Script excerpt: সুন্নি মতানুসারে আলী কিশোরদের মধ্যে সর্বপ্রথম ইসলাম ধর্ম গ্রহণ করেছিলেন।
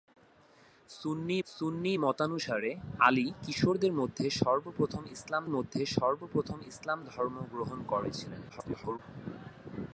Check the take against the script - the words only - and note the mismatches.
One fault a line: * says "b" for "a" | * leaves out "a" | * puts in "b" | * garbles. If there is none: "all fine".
* puts in "সুন্নি"
* puts in "মধ্যে সর্বপ্রথম ইসলাম"
* garbles